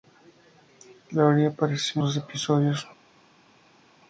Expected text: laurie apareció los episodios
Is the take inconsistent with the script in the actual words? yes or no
no